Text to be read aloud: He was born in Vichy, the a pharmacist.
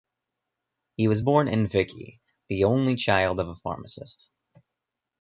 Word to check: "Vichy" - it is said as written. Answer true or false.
true